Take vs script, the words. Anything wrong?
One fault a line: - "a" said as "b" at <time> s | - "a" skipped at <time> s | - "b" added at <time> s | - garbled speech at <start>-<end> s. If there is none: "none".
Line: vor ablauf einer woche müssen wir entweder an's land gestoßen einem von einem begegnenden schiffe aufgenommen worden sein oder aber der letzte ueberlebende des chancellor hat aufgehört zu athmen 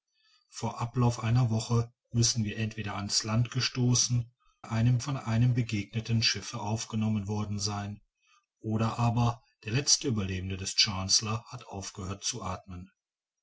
none